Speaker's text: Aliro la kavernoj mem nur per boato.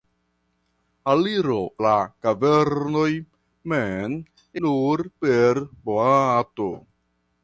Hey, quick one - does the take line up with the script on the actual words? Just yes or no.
yes